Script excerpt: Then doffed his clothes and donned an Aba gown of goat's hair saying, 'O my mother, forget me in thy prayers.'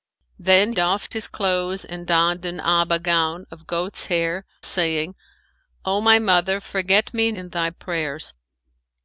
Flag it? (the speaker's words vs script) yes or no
no